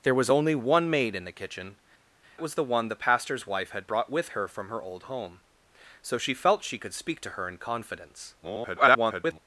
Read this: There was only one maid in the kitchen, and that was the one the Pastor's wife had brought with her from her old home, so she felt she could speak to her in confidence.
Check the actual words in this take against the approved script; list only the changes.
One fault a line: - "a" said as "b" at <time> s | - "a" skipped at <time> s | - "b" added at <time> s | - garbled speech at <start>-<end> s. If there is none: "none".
- "and that" skipped at 1.8 s
- garbled speech at 8.4-9.4 s